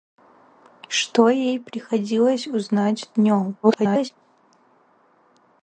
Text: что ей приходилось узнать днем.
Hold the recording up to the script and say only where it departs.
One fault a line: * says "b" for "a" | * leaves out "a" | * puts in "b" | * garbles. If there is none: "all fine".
* garbles